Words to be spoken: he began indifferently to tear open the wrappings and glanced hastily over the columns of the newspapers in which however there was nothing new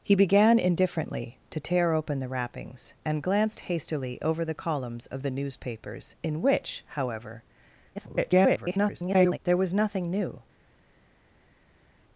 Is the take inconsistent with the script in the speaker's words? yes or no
yes